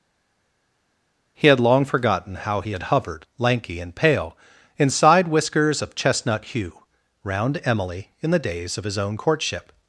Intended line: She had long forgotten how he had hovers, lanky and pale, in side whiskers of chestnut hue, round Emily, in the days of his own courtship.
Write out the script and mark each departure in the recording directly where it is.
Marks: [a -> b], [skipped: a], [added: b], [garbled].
[She -> He] had long forgotten how he had [hovers, -> hovered] lanky and pale, in side whiskers of chestnut hue, round Emily, in the days of his own courtship.